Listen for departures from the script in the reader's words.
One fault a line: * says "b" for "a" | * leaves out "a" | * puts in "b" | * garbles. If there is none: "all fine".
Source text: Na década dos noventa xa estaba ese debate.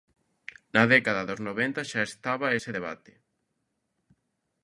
all fine